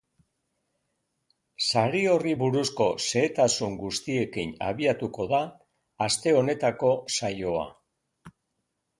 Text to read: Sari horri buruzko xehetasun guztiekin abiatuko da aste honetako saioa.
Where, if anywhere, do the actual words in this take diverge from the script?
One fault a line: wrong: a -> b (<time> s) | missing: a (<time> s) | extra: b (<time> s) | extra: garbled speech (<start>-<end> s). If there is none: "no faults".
no faults